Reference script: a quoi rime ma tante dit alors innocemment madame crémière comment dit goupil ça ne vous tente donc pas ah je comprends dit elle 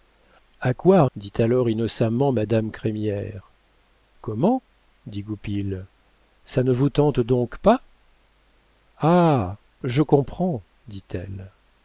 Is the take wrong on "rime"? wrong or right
wrong